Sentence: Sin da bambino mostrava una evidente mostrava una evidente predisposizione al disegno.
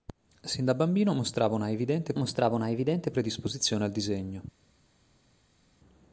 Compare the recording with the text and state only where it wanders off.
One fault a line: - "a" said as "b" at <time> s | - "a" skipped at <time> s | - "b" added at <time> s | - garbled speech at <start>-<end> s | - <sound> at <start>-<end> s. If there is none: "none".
none